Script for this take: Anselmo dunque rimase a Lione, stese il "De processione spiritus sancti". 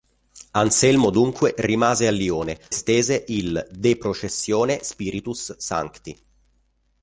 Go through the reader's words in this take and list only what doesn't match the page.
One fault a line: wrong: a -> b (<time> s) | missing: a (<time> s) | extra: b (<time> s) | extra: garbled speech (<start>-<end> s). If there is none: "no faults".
no faults